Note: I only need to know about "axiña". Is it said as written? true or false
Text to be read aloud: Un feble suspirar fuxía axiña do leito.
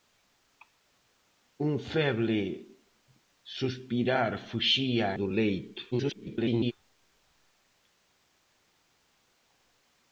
false